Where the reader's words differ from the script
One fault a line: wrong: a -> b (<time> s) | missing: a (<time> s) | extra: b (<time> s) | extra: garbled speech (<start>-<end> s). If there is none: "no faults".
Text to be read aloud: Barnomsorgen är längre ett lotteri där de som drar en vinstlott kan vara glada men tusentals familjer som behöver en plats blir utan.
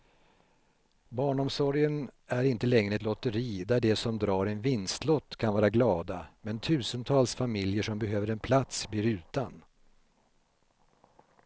extra: inte (2.4 s)